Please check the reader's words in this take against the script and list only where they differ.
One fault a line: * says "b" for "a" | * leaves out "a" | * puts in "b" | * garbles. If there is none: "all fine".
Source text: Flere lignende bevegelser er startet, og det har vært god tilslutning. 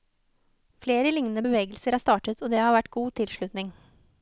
all fine